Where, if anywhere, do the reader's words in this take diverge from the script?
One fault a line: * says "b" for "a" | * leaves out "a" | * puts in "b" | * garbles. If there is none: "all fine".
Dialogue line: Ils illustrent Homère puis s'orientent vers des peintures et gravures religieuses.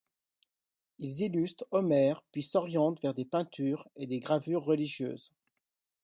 * puts in "des"